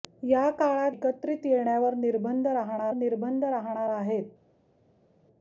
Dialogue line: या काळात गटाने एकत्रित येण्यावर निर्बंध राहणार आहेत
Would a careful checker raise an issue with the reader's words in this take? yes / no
yes